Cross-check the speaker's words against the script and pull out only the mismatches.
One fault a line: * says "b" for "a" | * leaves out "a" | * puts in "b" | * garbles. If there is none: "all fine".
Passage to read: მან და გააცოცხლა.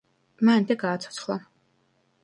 all fine